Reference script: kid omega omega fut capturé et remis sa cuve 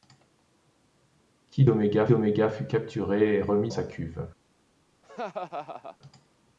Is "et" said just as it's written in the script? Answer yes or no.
yes